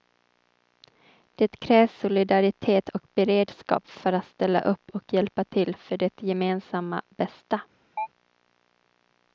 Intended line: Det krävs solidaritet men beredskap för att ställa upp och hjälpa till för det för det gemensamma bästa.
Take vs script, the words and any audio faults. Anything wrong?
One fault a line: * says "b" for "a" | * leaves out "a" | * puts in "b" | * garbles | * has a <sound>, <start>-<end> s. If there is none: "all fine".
* says "och" for "men"
* leaves out "för det"
* has a chirp, 8.0-8.1 s